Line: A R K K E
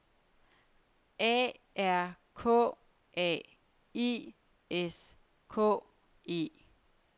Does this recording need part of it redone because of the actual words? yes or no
yes